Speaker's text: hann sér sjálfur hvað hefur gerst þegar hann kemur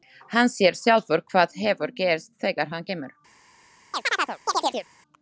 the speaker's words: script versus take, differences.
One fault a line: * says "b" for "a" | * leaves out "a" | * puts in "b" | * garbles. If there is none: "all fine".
all fine